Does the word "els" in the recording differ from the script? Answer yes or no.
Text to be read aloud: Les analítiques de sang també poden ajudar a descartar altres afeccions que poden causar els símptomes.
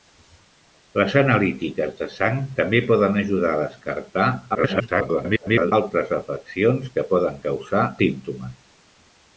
yes